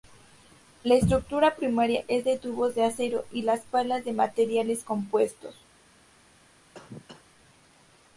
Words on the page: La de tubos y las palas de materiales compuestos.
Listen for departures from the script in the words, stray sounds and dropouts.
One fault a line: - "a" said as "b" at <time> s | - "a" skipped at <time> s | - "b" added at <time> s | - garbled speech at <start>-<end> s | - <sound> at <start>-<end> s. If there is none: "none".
- "estructura primaria es" added at 0.9 s
- "de acero" added at 2.7 s
- cough at 6.7-7.2 s